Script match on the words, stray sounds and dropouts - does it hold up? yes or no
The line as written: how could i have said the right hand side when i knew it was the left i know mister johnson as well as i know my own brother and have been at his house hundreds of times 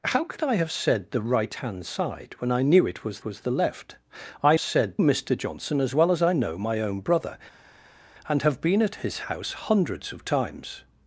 no